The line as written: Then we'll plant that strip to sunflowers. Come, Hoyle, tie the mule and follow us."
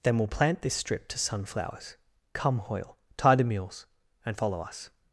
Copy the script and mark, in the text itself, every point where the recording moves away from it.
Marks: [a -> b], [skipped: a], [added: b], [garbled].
Then we'll plant [that -> this] strip to sunflowers. Come, Hoyle, tie the [mule -> mules] and follow us."